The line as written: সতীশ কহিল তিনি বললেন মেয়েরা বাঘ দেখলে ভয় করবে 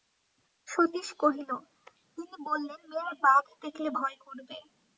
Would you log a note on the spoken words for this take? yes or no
no